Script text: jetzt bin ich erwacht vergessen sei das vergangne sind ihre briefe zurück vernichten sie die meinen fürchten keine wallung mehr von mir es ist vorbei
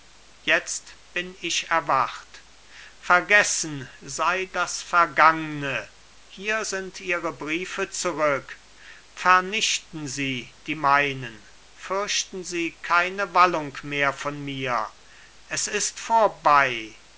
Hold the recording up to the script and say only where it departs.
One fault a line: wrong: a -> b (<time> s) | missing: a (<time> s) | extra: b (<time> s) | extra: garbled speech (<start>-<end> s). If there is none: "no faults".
extra: hier (6.2 s)
extra: sie (12.4 s)